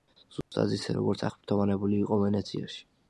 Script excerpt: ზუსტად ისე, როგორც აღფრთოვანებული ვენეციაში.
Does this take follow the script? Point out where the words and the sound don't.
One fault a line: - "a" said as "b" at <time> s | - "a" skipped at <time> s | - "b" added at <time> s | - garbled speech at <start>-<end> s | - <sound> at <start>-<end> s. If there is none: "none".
- dropout at 0.4-0.5 s
- "იყო" added at 2.1 s